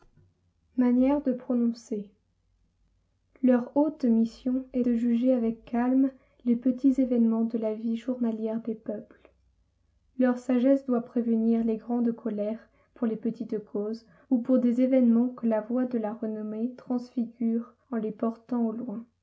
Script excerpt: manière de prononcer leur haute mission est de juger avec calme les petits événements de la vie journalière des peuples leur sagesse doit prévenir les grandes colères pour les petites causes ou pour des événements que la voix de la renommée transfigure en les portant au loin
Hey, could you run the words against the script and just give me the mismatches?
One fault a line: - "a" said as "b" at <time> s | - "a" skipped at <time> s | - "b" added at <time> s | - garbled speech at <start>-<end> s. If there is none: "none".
none